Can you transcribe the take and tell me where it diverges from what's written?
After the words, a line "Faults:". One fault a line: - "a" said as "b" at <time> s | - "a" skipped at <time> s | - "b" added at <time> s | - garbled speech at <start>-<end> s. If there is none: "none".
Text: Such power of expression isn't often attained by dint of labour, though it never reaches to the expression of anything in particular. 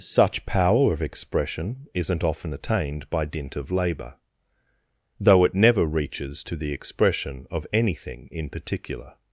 Such power of expression isn't often attained by dint of labour, though it never reaches to the expression of anything in particular.
Faults:
none